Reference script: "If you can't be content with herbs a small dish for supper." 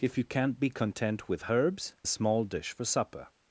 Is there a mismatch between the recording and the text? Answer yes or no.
no